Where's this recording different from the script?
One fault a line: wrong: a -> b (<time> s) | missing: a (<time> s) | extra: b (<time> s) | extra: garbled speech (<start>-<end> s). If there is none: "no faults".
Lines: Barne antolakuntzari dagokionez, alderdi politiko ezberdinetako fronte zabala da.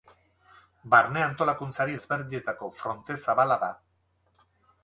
missing: dagokionez alderdi politiko (2.0 s)